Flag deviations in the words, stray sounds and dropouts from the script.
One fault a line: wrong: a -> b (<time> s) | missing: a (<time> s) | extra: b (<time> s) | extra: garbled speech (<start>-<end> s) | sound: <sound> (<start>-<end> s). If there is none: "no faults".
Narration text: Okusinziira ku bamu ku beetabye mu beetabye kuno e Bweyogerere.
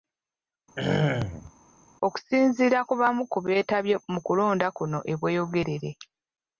sound: throat clearing (0.8-1.5 s)
wrong: beetabye -> kulonda (4.3 s)